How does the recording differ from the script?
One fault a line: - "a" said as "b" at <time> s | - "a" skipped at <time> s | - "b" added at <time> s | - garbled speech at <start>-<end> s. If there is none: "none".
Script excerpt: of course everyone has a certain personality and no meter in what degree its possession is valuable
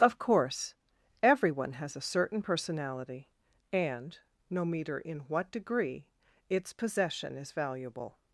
none